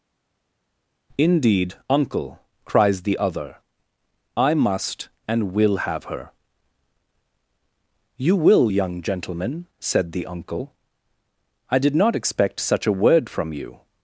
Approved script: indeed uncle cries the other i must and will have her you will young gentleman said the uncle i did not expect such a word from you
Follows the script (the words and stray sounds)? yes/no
yes